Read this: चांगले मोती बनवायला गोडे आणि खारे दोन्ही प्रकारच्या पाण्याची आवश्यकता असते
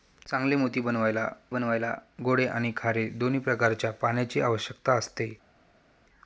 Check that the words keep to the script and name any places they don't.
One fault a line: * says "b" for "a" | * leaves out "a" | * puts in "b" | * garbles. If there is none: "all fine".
* puts in "बनवायला"